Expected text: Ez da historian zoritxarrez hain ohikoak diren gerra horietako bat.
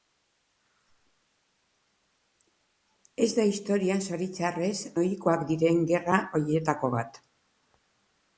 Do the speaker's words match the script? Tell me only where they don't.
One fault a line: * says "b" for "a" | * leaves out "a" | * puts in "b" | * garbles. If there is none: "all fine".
* leaves out "hain"